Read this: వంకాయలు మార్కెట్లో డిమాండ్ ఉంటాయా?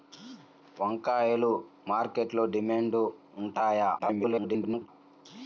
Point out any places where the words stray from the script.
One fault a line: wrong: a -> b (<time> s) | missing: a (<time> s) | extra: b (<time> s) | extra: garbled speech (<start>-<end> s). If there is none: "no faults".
extra: garbled speech (4.0-4.9 s)